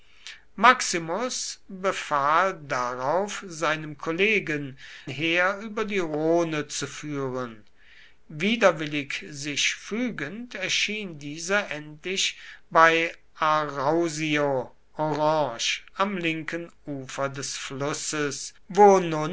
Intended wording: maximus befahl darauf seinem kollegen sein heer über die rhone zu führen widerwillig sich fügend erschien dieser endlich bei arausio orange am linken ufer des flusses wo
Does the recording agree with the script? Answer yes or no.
no